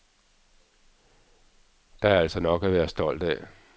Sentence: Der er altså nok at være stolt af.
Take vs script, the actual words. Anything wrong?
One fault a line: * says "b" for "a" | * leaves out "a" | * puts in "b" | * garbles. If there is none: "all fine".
all fine